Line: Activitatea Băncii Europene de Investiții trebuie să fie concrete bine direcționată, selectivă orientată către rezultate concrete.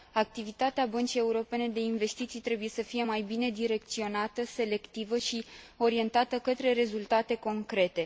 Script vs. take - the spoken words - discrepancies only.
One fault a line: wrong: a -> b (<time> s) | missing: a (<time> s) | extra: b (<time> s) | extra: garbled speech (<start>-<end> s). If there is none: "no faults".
wrong: concrete -> mai (3.0 s)
extra: și (5.2 s)